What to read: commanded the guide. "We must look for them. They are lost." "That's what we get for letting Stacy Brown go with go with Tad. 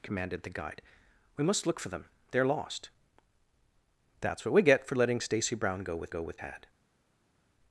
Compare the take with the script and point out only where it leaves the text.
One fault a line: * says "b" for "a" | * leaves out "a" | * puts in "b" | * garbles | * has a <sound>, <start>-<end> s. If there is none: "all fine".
all fine